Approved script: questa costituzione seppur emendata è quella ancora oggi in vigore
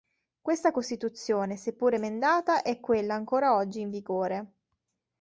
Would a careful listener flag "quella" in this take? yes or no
no